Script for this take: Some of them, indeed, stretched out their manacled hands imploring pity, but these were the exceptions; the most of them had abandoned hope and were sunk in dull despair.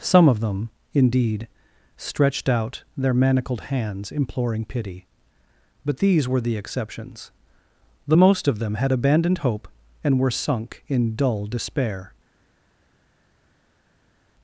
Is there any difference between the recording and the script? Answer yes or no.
no